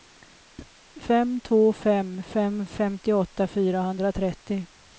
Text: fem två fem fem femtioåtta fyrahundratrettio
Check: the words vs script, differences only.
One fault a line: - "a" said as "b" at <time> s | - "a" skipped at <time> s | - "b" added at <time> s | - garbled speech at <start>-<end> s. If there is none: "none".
none